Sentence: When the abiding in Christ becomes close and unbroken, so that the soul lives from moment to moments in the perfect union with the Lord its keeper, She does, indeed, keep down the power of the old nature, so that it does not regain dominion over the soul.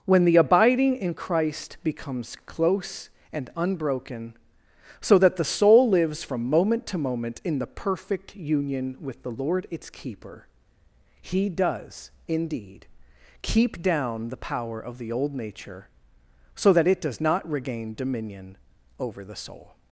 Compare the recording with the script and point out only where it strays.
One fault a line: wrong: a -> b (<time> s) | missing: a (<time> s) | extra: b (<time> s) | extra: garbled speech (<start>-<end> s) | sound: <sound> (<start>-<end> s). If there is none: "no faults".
wrong: moments -> moment (7.0 s)
wrong: She -> He (11.2 s)